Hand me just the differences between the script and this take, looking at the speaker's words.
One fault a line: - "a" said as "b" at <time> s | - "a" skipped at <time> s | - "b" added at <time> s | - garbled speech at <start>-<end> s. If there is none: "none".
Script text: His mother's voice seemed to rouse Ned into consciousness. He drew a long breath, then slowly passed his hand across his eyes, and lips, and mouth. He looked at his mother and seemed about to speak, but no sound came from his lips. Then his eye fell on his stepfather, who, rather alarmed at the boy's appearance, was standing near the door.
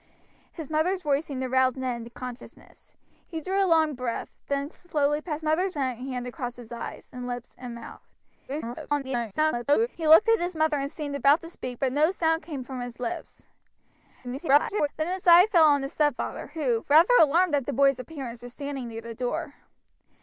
- "his" said as "mother's" at 5.4 s
- garbled speech at 8.5-9.9 s
- garbled speech at 14.2-14.9 s